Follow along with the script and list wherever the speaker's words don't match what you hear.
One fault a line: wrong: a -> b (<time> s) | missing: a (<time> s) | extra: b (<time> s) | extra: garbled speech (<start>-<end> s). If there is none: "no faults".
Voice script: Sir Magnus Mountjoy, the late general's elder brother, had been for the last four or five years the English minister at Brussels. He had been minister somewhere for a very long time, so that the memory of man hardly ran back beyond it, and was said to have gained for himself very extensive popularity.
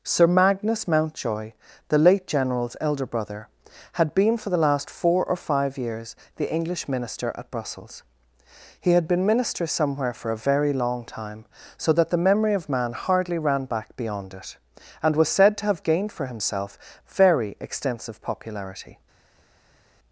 no faults